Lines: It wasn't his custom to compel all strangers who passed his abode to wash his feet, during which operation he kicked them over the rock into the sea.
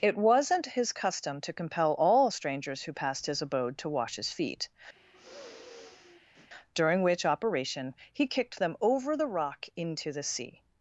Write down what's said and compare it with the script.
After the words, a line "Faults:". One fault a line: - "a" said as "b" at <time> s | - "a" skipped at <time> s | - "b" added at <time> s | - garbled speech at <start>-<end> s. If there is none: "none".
It wasn't his custom to compel all strangers who passed his abode to wash his feet, during which operation he kicked them over the rock into the sea.
Faults:
none